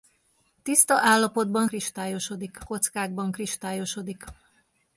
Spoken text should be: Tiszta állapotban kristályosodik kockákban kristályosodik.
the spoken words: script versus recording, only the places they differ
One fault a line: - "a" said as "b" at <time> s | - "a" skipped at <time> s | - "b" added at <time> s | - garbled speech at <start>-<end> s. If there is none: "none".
none